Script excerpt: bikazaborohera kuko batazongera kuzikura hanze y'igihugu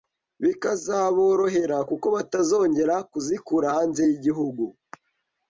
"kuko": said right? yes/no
yes